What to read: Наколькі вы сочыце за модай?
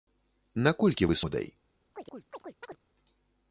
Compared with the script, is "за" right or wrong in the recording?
wrong